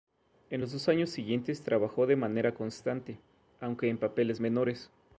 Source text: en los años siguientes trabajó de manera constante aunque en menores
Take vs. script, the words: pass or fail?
fail